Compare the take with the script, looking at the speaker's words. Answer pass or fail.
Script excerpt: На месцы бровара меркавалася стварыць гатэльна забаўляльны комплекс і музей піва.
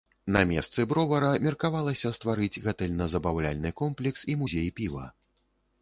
pass